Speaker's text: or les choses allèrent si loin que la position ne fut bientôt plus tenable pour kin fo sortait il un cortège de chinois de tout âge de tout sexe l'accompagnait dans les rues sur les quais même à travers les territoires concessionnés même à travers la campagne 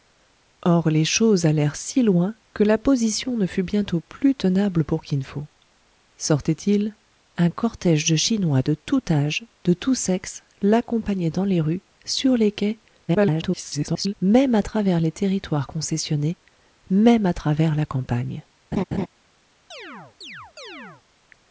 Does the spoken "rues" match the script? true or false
true